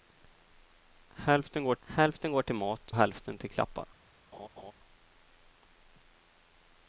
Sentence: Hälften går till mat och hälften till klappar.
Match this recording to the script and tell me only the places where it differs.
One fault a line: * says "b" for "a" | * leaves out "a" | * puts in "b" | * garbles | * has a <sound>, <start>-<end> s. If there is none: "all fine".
* puts in "hälften går"
* leaves out "och"
* has a laugh, 4.3-4.7 s